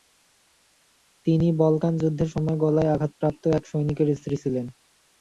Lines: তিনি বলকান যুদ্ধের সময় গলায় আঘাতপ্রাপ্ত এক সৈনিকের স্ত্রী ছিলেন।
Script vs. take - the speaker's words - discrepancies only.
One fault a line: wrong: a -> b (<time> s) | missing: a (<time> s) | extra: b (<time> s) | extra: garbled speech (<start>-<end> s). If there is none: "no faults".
no faults